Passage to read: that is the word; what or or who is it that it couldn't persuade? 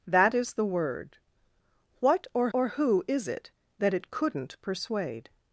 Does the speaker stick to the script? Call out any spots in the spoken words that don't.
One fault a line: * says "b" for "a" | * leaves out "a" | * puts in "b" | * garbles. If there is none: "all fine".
all fine